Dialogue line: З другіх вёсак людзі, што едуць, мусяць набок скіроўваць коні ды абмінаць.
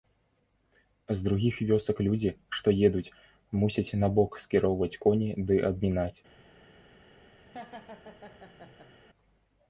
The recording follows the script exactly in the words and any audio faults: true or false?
false